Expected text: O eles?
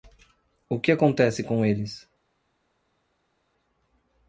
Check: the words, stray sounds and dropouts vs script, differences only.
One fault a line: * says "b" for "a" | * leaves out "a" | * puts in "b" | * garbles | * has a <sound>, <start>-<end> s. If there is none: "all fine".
* puts in "que acontece com"